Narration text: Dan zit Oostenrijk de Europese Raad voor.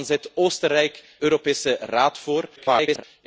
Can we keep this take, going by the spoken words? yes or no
no